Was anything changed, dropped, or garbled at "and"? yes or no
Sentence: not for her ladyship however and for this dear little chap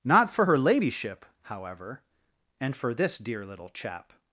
no